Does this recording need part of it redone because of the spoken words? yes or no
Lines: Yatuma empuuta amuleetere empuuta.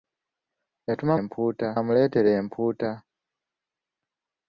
no